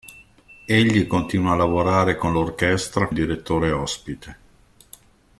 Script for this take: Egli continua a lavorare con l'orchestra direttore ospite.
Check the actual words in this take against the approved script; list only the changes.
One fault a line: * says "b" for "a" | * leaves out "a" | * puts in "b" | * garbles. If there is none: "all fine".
all fine